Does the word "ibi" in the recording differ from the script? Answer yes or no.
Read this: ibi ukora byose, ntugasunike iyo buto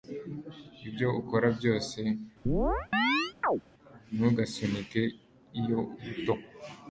yes